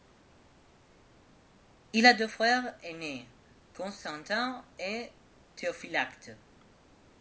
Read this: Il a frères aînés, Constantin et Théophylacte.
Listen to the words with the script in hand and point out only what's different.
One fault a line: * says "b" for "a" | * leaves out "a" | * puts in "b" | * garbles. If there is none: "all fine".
* puts in "deux"